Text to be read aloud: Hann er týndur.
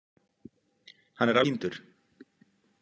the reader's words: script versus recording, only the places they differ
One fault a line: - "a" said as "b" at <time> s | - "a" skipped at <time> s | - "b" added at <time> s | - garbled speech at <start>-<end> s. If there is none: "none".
none